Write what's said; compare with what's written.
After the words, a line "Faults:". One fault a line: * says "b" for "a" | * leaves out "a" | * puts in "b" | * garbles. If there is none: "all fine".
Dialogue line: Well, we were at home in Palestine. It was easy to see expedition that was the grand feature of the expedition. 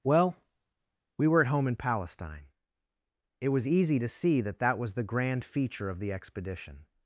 Well, we were at home in Palestine. It was easy to see that that was the grand feature of the expedition.
Faults:
* says "that" for "expedition"